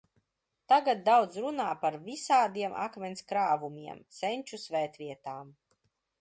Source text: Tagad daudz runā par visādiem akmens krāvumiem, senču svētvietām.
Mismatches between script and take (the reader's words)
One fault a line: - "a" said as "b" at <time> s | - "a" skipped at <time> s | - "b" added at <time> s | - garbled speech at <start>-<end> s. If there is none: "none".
none